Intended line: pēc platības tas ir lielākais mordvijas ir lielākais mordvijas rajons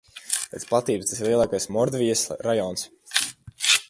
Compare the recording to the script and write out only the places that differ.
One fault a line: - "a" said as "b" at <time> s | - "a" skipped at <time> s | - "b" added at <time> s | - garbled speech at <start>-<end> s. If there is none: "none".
- "ir lielākais mordvijas" skipped at 2.3 s